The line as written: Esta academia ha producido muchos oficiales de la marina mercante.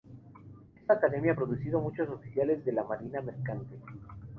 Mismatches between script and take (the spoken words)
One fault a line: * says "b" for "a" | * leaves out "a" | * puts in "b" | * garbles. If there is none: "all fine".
all fine